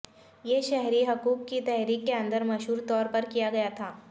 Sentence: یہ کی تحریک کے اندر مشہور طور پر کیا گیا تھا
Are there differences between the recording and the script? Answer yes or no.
yes